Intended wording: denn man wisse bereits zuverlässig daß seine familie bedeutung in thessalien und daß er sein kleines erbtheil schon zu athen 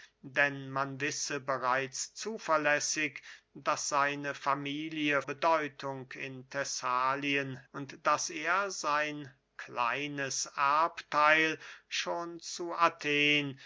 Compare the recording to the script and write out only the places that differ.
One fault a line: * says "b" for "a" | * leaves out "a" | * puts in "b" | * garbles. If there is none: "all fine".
all fine